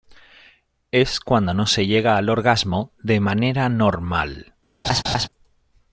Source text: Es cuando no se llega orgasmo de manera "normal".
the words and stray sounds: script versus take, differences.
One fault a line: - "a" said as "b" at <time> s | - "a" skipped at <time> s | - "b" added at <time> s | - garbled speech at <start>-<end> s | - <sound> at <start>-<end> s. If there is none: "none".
- "al" added at 2.2 s
- laugh at 4.8-5.3 s